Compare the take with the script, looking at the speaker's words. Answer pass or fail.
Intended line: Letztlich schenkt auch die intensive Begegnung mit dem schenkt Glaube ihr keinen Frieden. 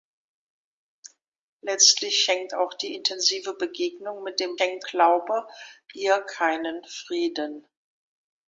pass